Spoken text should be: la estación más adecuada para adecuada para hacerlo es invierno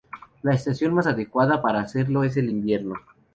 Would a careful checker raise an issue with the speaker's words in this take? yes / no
yes